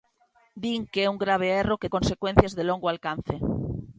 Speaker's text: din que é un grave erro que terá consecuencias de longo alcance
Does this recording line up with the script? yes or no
no